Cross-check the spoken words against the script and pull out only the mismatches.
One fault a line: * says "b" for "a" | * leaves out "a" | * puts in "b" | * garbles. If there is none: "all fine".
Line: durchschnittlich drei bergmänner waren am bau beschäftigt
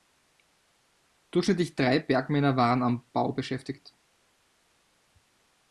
all fine